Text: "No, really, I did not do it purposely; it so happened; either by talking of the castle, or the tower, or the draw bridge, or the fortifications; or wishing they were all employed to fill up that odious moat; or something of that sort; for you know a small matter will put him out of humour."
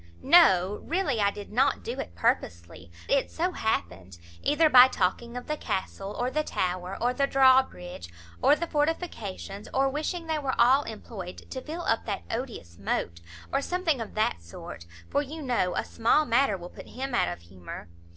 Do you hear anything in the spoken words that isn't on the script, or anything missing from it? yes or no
no